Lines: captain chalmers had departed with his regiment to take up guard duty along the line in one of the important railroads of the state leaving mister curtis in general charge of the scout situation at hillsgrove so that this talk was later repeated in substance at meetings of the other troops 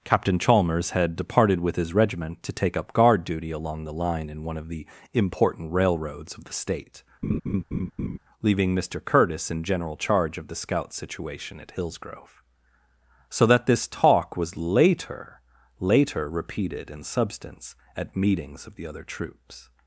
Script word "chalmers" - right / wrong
right